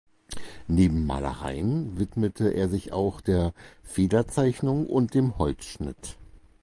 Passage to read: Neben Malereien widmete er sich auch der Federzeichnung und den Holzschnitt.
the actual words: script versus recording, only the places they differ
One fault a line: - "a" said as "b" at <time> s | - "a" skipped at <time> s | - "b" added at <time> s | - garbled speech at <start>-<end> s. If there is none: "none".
- "den" said as "dem" at 5.1 s